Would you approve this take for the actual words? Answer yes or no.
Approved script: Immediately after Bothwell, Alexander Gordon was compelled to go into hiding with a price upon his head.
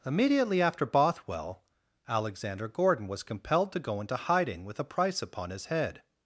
yes